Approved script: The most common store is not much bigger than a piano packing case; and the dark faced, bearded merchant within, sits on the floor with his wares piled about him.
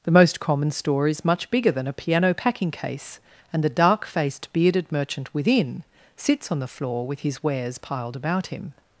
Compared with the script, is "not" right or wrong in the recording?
wrong